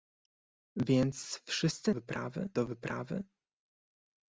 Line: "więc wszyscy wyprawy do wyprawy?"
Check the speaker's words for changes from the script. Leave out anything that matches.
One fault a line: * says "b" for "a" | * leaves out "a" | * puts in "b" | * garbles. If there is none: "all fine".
all fine